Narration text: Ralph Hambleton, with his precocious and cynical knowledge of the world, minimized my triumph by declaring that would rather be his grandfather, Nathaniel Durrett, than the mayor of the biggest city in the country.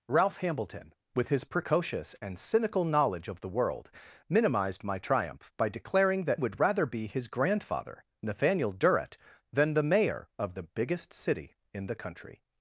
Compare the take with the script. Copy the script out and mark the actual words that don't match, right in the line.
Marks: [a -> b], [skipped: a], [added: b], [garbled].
Ralph Hambleton, with his precocious and cynical knowledge of the world, minimized my triumph by declaring that would rather be his grandfather, Nathaniel Durrett, than the mayor of the biggest city in the country.